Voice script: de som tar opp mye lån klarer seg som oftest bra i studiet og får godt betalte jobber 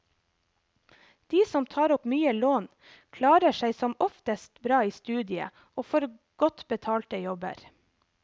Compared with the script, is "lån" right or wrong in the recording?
right